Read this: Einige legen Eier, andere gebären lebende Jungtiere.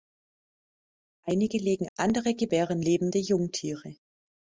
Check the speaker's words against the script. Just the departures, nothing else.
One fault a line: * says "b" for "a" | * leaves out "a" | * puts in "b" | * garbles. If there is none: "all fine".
* leaves out "Eier"